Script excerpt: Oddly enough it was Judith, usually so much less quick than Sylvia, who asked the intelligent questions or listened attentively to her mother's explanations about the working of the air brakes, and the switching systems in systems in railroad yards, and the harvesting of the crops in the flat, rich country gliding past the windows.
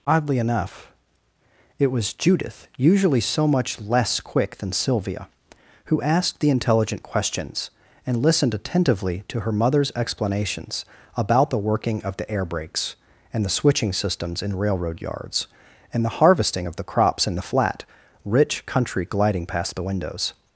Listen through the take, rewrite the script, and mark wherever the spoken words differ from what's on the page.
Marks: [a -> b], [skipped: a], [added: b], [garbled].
Oddly enough it was Judith, usually so much less quick than Sylvia, who asked the intelligent questions [or -> and] listened attentively to her mother's explanations about the working of the air brakes, and the switching systems in [skipped: systems in] railroad yards, and the harvesting of the crops in the flat, rich country gliding past the windows.